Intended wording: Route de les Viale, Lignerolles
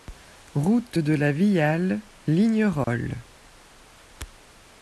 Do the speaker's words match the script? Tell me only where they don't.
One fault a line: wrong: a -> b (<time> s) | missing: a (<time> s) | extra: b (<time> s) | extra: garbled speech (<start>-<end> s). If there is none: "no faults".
wrong: les -> la (1.1 s)